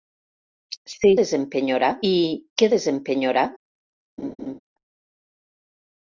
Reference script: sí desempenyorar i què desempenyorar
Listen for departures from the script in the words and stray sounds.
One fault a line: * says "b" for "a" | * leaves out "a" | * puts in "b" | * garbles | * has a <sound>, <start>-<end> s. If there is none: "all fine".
* has a laugh, 4.2-4.6 s